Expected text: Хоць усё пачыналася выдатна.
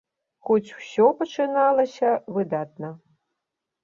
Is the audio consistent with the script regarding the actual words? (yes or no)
yes